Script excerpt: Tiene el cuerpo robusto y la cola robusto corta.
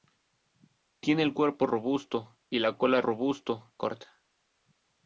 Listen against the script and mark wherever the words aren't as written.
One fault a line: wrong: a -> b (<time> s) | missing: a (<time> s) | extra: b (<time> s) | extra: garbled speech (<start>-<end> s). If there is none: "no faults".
no faults